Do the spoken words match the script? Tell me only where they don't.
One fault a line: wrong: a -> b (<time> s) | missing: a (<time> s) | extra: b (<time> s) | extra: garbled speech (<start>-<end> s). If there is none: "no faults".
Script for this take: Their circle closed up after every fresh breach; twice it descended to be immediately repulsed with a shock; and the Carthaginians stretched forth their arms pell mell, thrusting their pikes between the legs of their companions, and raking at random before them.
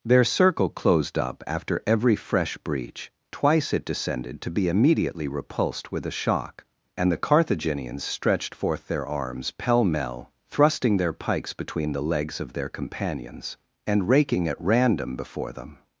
no faults